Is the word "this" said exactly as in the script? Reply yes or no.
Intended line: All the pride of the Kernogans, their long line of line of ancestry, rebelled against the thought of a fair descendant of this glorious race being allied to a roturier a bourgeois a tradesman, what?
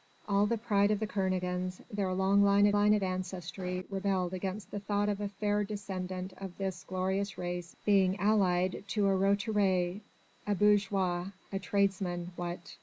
yes